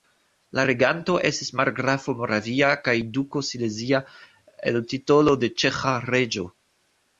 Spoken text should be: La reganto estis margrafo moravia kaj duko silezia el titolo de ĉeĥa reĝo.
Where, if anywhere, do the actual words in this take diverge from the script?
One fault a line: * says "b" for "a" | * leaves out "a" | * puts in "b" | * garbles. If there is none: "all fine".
all fine